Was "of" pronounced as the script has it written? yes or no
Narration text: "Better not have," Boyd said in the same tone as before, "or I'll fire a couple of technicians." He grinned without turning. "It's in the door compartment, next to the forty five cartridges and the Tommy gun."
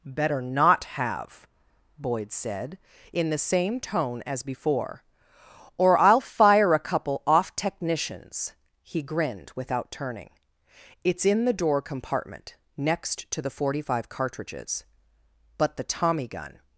no